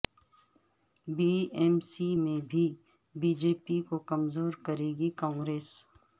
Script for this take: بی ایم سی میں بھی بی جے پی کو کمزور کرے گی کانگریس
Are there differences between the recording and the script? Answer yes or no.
no